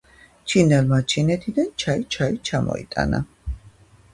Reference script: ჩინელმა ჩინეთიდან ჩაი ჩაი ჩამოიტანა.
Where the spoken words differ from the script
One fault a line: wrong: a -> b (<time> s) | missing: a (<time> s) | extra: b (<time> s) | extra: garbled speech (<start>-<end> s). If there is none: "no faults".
no faults